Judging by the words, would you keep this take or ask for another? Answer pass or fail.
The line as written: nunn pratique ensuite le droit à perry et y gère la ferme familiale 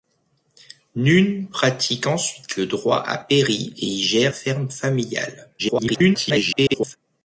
fail